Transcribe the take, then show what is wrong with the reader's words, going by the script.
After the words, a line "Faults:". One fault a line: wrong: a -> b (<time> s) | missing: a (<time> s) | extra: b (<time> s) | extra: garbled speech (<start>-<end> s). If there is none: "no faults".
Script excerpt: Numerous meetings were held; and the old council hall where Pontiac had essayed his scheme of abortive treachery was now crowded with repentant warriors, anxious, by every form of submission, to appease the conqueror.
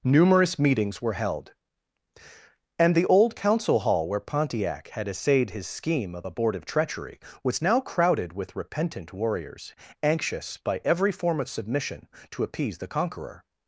Numerous meetings were held; and the old council hall where Pontiac had essayed his scheme of abortive treachery was now crowded with repentant warriors, anxious, by every form of submission, to appease the conqueror.
Faults:
no faults